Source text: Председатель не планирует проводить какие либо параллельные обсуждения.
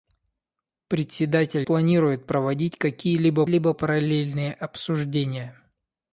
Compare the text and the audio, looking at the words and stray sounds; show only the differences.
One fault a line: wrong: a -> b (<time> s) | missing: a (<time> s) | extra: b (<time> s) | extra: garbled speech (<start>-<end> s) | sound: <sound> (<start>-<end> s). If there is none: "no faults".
missing: не (1.7 s)
extra: либо (3.5 s)